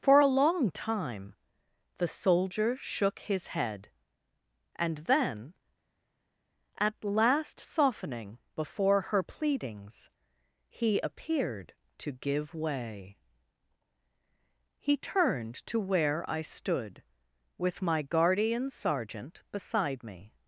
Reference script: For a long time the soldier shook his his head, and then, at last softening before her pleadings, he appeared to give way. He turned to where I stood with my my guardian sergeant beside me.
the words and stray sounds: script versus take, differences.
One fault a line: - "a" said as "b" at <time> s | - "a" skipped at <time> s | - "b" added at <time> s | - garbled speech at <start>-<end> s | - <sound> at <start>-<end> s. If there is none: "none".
- "his" skipped at 3.5 s
- "my" skipped at 18.0 s